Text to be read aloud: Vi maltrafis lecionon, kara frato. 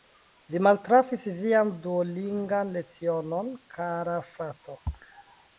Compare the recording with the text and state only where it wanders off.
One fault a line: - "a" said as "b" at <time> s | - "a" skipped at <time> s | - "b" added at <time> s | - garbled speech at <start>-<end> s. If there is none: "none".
- "vian duolingan" added at 1.4 s